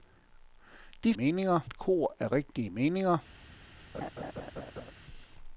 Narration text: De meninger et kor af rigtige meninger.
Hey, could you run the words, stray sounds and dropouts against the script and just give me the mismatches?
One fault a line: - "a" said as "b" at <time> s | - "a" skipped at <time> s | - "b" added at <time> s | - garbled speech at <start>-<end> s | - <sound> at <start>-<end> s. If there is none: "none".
- laugh at 3.9-4.9 s